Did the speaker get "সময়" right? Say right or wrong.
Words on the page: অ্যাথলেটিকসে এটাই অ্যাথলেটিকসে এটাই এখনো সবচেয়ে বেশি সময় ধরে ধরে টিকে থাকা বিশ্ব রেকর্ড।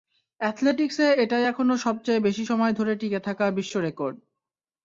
right